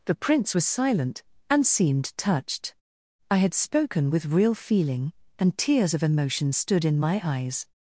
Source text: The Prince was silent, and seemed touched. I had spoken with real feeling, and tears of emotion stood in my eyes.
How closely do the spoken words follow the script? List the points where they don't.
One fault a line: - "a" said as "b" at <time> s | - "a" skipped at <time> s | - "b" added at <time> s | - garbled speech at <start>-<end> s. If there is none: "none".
none